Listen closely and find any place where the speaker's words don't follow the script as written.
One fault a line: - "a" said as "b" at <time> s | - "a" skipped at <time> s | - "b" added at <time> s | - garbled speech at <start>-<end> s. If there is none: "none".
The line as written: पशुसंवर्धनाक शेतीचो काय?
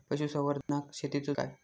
none